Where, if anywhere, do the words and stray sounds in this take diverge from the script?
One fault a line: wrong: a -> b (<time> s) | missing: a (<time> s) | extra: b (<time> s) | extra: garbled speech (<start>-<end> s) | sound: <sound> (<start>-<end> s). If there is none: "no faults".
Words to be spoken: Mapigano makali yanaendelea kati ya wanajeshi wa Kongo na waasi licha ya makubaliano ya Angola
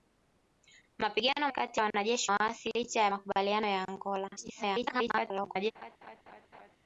missing: makali yanaendelea (1.5 s)
missing: wa Kongo na (2.3 s)
extra: garbled speech (4.4-5.7 s)
sound: laugh (5.7-6.8 s)